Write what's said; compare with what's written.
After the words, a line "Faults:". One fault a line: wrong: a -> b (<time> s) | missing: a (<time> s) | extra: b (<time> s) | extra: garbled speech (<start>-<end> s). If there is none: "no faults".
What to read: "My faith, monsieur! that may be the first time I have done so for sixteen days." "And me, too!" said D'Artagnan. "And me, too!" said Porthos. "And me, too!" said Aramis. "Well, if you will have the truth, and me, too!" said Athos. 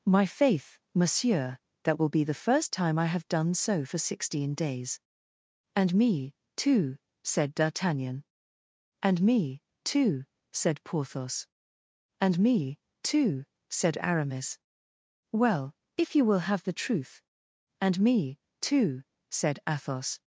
"My faith, monsieur! that will be the first time I have done so for sixteen days." "And me, too!" said D'Artagnan. "And me, too!" said Porthos. "And me, too!" said Aramis. "Well, if you will have the truth, and me, too!" said Athos.
Faults:
wrong: may -> will (2.0 s)